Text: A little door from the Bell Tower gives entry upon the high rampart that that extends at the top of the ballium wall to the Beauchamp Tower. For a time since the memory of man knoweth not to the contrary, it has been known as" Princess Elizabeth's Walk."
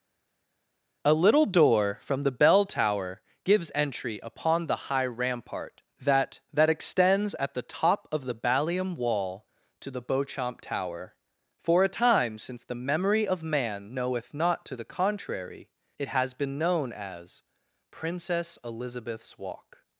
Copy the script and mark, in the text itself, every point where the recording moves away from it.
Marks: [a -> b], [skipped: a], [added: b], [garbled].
A little door from the Bell Tower gives entry upon the high rampart that that extends at the top of the ballium wall to the Beauchamp Tower. For a time since the memory of man knoweth not to the contrary, it has been known as" Princess Elizabeth's Walk."